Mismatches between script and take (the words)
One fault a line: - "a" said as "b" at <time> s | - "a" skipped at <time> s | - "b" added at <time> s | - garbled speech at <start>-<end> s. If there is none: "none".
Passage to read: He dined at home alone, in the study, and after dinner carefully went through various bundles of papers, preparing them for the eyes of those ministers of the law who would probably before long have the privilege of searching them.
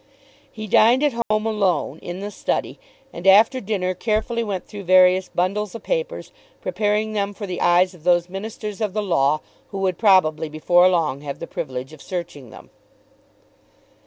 none